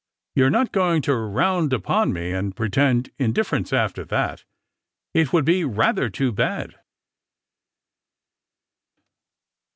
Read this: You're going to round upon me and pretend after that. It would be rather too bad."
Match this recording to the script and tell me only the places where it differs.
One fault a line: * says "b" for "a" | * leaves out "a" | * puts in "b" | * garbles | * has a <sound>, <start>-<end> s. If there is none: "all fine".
* puts in "not"
* puts in "indifference"